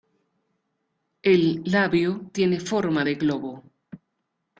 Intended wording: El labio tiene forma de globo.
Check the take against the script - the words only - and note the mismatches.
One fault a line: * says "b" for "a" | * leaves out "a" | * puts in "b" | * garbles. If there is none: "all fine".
all fine